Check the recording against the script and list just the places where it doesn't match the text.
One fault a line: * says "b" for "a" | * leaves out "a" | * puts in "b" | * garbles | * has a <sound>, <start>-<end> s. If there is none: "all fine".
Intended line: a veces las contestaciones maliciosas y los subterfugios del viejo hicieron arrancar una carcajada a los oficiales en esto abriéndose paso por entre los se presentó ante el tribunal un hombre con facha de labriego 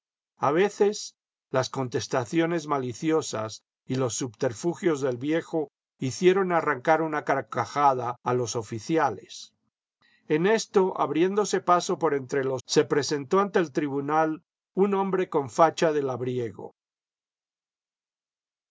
all fine